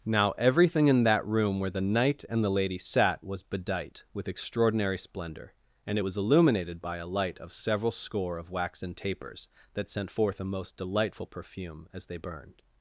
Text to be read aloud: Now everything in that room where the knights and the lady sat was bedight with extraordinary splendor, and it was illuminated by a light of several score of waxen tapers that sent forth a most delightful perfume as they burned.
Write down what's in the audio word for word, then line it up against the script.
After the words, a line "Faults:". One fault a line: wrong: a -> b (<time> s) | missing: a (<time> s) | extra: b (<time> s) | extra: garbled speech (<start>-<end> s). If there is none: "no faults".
Now everything in that room where the knight and the lady sat was bedight with extraordinary splendor, and it was illuminated by a light of several score of waxen tapers that sent forth a most delightful perfume as they burned.
Faults:
wrong: knights -> knight (1.8 s)